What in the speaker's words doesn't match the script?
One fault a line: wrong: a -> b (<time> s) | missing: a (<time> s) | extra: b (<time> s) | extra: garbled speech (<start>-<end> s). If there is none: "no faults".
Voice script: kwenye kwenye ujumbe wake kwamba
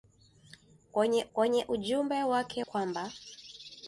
no faults